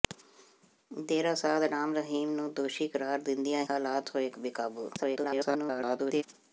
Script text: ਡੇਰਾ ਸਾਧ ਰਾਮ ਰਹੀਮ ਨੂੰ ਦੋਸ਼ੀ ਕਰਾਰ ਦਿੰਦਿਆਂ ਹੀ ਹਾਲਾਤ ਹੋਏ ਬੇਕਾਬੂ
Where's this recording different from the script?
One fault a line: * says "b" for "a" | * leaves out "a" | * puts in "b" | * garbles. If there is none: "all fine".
* leaves out "ਹੀ"
* garbles